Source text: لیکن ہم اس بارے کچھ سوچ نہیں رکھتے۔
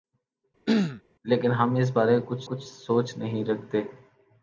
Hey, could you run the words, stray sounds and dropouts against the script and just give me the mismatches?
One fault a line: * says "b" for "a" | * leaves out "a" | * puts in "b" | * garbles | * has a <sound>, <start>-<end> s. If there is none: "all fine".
* has a throat clearing, 0.7-1.0 s
* puts in "کچھ"